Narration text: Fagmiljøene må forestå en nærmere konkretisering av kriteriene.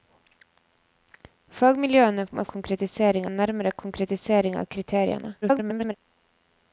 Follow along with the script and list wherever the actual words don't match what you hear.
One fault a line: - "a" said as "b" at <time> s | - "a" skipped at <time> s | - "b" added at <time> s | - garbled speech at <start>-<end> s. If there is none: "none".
- "forestå" said as "konkretisering" at 2.5 s
- garbled speech at 5.4-5.9 s